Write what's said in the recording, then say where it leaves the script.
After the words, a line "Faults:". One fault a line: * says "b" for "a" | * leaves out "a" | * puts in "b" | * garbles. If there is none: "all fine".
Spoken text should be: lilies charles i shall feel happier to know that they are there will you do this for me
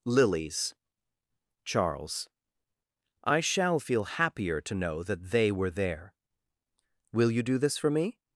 lilies charles i shall feel happier to know that they were there will you do this for me
Faults:
* says "were" for "are"